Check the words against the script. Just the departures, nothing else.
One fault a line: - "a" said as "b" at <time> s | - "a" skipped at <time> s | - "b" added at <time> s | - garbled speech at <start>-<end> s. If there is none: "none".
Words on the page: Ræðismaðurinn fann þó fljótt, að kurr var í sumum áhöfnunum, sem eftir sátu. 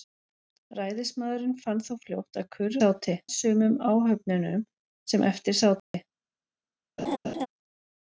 - "var" said as "sátu" at 2.8 s